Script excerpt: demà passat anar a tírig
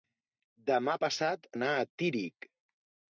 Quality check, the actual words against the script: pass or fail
pass